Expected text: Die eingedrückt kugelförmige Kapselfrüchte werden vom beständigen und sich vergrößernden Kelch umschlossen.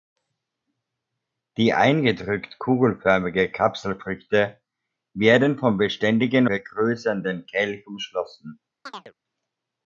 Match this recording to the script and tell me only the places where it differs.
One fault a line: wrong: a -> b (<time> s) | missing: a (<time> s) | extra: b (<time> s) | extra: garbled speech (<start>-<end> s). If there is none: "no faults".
missing: und sich (6.5 s)